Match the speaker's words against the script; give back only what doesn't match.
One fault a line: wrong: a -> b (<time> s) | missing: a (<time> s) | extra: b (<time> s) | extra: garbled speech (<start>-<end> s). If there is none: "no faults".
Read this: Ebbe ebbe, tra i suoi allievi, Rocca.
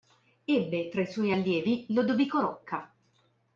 missing: ebbe (0.9 s)
extra: Lodovico (1.9 s)